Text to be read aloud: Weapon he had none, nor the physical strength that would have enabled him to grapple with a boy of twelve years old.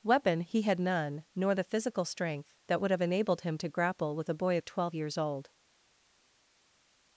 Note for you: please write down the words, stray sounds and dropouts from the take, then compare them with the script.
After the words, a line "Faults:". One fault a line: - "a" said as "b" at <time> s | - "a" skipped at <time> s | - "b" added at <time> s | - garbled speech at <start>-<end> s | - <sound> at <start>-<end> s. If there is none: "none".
Weapon he had none, nor the physical strength that would have enabled him to grapple with a boy of twelve years old.
Faults:
none